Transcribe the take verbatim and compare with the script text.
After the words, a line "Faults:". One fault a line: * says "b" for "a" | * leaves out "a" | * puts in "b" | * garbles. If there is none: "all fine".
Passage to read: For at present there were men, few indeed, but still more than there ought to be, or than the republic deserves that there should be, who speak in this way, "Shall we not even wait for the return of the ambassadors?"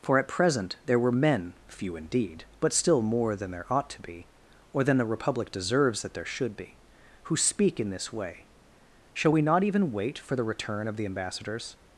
For at present there were men, few indeed, but still more than there ought to be, or than the republic deserves that there should be, who speak in this way, "Shall we not even wait for the return of the ambassadors?"
Faults:
all fine